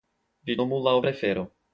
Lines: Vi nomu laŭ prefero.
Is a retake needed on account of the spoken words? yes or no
no